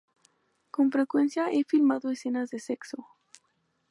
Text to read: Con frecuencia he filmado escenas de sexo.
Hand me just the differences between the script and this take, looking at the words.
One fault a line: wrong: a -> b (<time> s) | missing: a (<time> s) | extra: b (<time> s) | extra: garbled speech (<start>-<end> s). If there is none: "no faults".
no faults